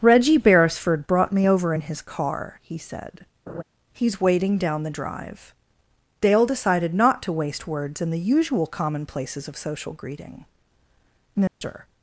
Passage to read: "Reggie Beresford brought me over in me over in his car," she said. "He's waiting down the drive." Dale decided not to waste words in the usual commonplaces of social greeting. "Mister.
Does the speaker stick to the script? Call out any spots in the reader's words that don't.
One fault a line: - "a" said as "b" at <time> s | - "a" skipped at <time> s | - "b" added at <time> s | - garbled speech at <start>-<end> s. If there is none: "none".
- "me over in" skipped at 1.8 s
- "she" said as "he" at 2.6 s